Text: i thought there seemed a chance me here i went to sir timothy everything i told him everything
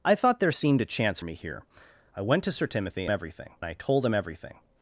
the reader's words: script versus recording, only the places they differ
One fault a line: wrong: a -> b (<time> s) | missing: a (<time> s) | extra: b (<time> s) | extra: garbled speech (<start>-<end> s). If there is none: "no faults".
no faults